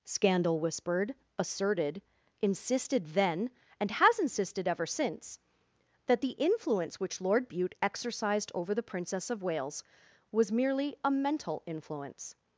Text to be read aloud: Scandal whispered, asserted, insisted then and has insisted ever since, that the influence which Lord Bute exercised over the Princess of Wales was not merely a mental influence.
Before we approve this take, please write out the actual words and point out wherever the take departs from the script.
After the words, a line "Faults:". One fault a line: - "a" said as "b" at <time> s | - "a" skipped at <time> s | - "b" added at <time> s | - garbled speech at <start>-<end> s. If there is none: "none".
Scandal whispered, asserted, insisted then and has insisted ever since, that the influence which Lord Bute exercised over the Princess of Wales was merely a mental influence.
Faults:
- "not" skipped at 10.5 s